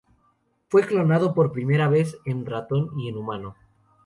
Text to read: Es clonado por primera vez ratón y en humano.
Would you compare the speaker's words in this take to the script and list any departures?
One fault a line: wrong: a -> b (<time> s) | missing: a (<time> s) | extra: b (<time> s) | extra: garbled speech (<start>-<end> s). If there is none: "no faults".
wrong: Es -> Fue (0.7 s)
extra: en (2.2 s)